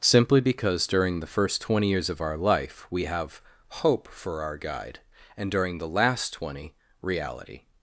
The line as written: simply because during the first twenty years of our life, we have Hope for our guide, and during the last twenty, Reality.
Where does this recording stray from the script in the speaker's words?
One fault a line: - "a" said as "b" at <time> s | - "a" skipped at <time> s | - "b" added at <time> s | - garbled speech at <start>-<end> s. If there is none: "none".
none